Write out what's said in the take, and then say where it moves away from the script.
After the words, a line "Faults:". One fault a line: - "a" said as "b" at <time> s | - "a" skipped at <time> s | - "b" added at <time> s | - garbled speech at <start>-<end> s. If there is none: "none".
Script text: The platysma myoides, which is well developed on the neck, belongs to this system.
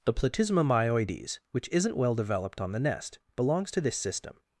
The platysma myoides, which isn't well developed on the nest, belongs to this system.
Faults:
- "is" said as "isn't" at 1.7 s
- "neck" said as "nest" at 2.8 s